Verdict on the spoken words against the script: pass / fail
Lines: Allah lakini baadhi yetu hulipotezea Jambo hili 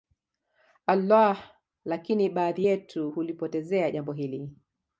pass